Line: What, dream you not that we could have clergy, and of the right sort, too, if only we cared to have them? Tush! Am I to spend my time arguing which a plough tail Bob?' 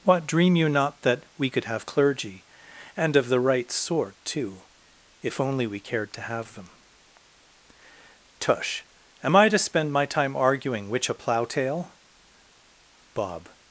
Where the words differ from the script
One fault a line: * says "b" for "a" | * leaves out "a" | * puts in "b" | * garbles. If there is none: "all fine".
all fine